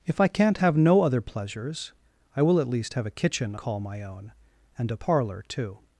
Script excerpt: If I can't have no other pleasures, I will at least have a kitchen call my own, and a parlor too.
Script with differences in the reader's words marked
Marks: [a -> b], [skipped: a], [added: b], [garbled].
If I can't have no other pleasures, I will at least have a kitchen call my own, and a parlor too.